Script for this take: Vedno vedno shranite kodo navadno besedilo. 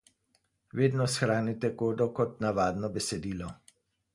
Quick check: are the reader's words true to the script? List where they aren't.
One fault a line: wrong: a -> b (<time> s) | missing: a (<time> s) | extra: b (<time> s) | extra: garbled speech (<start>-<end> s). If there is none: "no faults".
missing: vedno (1.1 s)
extra: kot (2.2 s)